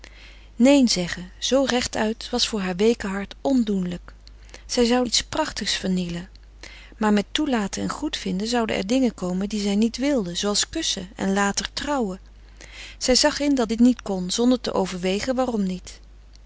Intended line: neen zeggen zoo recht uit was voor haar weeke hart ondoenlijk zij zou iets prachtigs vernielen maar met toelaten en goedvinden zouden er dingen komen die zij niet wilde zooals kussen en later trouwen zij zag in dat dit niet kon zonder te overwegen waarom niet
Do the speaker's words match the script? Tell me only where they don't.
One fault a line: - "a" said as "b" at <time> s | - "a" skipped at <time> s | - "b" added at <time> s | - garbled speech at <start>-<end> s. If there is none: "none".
none